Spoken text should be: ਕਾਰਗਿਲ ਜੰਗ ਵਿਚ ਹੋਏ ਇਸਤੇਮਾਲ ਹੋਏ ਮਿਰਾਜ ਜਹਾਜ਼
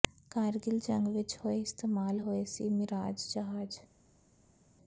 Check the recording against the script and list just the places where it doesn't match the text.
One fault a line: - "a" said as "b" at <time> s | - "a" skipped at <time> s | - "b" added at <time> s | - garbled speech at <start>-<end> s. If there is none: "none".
- "ਸੀ" added at 2.5 s